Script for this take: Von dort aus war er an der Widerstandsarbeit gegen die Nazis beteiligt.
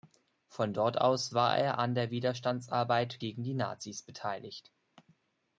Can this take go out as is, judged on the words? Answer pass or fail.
pass